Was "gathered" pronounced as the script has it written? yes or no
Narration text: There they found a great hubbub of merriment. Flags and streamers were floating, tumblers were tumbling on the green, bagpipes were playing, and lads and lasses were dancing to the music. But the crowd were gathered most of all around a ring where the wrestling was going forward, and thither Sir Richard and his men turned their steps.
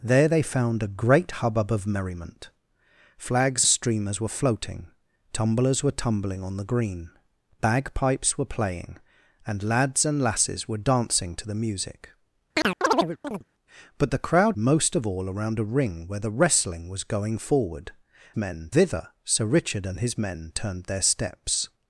no